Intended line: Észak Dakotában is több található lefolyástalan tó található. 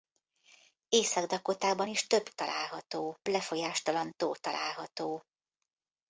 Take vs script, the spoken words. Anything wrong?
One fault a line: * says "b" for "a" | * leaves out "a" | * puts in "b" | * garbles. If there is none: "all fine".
all fine